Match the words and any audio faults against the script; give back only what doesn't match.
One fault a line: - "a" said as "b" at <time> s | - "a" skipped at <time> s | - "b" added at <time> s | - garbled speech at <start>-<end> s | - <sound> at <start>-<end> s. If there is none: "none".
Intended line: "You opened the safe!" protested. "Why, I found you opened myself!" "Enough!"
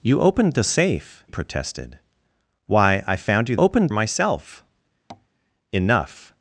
- tap at 5.1-5.3 s